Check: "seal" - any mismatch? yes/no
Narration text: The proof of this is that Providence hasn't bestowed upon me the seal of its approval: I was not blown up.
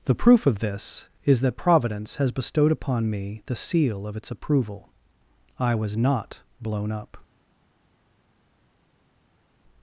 no